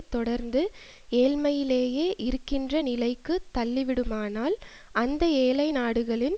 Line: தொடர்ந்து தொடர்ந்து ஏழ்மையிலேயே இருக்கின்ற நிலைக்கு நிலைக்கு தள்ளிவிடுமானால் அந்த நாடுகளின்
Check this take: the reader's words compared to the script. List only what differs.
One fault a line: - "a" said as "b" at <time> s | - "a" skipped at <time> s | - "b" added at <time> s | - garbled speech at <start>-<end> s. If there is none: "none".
- "தொடர்ந்து" skipped at 0.6 s
- "நிலைக்கு" skipped at 3.4 s
- "ஏழை" added at 5.4 s